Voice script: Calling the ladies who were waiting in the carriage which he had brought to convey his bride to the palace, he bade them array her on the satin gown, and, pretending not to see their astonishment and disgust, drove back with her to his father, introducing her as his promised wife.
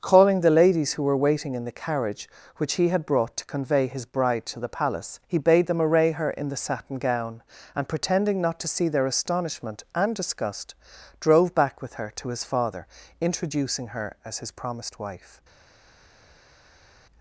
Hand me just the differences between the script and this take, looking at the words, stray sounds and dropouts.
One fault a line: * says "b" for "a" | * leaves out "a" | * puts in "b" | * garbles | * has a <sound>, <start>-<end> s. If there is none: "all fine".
* says "in" for "on"